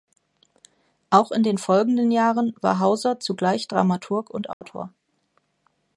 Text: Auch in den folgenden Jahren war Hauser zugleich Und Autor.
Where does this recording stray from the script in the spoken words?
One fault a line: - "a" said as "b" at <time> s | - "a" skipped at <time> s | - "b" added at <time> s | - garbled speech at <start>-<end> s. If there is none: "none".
- "Dramaturg" added at 3.7 s